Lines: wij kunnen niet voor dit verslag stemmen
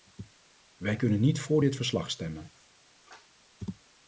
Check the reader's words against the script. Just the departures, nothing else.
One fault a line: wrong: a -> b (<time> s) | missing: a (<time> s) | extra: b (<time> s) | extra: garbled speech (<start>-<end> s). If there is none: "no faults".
no faults